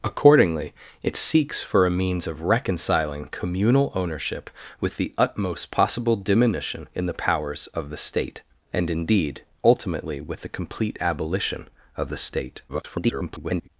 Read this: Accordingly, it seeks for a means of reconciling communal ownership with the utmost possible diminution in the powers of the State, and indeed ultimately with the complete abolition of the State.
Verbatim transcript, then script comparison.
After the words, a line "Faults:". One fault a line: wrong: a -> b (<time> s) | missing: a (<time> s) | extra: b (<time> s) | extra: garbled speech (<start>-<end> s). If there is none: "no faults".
Accordingly, it seeks for a means of reconciling communal ownership with the utmost possible diminution in the powers of the State, and indeed ultimately with the complete abolition of the State. [garbled]
Faults:
extra: garbled speech (12.7-13.7 s)